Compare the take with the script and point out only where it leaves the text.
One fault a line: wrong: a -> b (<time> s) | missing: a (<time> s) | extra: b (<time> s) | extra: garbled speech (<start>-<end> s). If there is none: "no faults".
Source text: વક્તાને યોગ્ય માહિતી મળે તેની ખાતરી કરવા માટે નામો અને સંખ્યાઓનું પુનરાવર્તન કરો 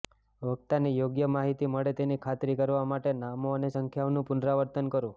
no faults